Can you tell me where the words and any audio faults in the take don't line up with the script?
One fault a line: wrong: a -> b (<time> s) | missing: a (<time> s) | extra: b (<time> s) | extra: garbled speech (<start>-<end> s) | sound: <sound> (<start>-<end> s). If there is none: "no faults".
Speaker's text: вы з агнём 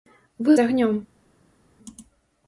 no faults